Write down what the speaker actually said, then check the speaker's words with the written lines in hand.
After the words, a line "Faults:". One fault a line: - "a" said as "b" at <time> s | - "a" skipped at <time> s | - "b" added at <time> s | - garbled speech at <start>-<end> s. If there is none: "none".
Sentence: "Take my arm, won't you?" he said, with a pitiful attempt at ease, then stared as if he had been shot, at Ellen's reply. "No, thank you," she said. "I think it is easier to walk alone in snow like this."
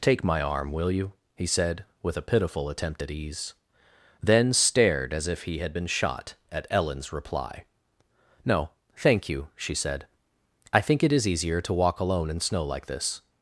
"Take my arm, will you?" he said, with a pitiful attempt at ease, then stared as if he had been shot, at Ellen's reply. "No, thank you," she said. "I think it is easier to walk alone in snow like this."
Faults:
- "won't" said as "will" at 0.7 s